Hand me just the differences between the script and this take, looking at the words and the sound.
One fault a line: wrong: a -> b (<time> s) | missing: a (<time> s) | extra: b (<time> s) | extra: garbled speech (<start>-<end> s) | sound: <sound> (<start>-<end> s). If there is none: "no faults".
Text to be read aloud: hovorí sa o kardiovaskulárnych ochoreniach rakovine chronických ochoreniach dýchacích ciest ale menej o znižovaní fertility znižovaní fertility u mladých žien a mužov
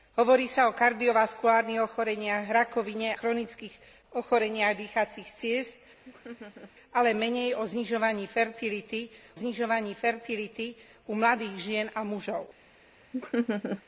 sound: laugh (6.0-6.7 s)
sound: laugh (13.1-13.8 s)